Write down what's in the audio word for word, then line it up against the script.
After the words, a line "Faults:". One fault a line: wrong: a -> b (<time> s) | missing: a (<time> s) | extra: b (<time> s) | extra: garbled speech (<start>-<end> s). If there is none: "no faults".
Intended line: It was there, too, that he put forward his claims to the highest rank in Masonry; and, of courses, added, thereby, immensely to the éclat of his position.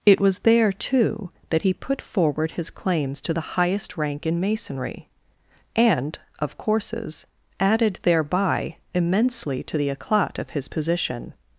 It was there, too, that he put forward his claims to the highest rank in Masonry; and, of courses, added, thereby, immensely to the éclat of his position.
Faults:
no faults